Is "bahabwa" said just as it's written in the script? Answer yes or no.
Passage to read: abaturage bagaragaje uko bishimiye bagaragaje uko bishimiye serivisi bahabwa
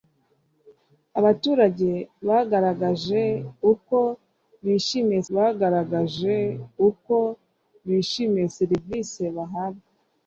yes